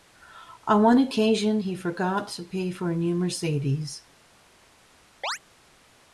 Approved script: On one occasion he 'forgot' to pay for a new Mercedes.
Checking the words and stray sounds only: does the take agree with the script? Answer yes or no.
no